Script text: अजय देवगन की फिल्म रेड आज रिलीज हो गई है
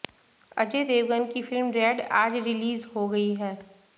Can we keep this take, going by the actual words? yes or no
yes